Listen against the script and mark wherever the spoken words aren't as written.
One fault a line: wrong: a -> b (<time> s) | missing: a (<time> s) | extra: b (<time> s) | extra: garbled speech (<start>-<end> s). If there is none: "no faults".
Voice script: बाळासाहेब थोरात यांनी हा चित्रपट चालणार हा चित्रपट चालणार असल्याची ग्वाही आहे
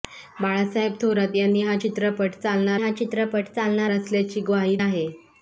no faults